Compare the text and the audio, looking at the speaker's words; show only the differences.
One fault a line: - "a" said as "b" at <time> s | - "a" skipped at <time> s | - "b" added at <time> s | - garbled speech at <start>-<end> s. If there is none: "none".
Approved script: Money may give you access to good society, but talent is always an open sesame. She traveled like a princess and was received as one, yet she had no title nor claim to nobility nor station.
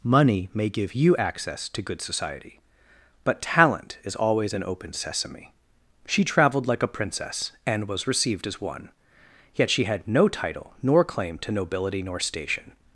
none